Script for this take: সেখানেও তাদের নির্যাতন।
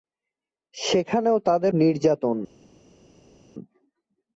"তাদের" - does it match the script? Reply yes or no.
yes